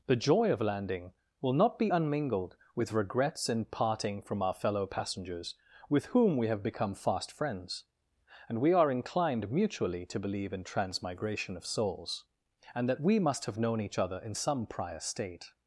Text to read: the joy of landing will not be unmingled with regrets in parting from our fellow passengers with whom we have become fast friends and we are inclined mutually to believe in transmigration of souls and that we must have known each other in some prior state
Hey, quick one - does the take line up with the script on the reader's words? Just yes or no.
yes